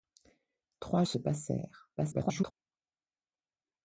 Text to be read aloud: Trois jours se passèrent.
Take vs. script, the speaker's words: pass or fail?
fail